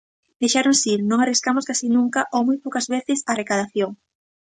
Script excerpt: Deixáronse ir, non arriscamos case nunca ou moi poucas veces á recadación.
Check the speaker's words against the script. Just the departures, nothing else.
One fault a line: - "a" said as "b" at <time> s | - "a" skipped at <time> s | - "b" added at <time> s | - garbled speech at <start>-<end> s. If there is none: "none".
none